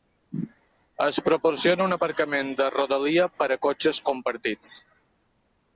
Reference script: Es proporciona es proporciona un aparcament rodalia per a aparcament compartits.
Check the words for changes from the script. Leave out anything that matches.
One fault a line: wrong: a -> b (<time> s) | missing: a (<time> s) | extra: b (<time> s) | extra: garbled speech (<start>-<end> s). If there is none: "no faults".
missing: es proporciona (1.9 s)
extra: de (2.6 s)
wrong: aparcament -> cotxes (3.7 s)